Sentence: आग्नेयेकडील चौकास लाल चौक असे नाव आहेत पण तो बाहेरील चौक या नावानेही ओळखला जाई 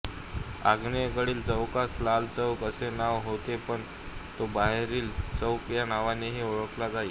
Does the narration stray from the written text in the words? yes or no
yes